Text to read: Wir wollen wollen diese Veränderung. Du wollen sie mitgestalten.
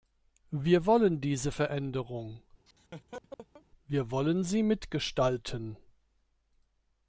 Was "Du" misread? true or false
true